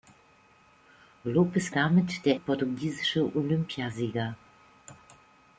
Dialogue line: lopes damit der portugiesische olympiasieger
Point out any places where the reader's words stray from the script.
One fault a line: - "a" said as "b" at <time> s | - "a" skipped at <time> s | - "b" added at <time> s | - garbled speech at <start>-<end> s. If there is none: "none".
none